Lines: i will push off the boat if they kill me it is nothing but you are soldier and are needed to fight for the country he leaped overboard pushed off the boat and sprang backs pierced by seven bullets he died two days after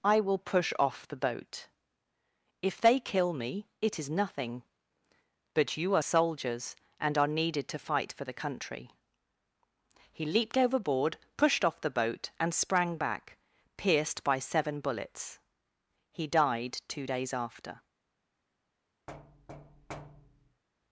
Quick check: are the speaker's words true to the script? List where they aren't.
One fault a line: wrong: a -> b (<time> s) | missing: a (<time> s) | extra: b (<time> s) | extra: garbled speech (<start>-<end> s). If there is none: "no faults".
wrong: soldier -> soldiers (6.0 s)
wrong: backs -> back (13.0 s)